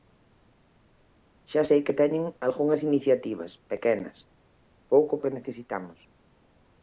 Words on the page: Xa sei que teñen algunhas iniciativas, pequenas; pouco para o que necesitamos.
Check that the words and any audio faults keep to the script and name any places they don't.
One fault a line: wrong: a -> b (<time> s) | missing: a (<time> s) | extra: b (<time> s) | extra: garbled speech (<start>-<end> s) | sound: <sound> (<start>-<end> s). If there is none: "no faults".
missing: para (5.1 s)